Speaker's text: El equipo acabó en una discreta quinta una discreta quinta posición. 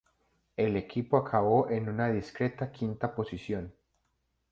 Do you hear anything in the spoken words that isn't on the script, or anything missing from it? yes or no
yes